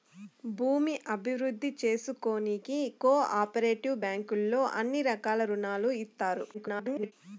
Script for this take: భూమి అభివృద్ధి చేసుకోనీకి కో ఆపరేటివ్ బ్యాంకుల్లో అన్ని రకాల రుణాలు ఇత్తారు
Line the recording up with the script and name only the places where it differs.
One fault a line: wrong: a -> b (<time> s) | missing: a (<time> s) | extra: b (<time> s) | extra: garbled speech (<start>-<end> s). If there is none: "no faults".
extra: garbled speech (6.5-7.1 s)